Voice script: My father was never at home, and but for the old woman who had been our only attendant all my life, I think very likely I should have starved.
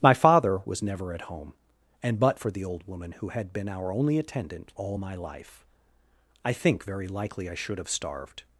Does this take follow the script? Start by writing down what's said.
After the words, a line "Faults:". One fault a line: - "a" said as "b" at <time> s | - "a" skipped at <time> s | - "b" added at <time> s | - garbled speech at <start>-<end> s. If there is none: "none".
My father was never at home, and but for the old woman who had been our only attendant all my life, I think very likely I should have starved.
Faults:
none